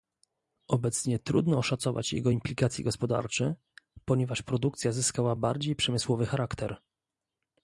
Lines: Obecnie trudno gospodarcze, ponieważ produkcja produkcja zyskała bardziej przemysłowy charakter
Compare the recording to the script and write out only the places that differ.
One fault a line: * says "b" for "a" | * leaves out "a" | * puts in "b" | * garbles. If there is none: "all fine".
* puts in "oszacować jego implikacje"
* leaves out "produkcja"